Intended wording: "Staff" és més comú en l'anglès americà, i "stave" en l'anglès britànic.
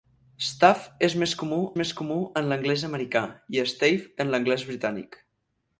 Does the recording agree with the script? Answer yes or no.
no